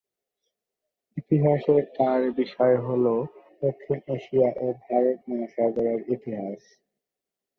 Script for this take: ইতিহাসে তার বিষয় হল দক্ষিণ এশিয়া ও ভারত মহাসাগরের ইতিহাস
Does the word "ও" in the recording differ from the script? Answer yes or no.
no